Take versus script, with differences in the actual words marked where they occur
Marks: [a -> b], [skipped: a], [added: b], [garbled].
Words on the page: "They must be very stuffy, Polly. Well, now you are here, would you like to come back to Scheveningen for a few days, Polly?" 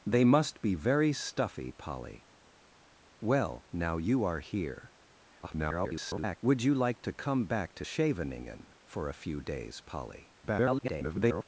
"They must be very stuffy, Polly. Well, now you are here, [garbled] would you like to come back to Scheveningen for a few days, Polly?" [garbled]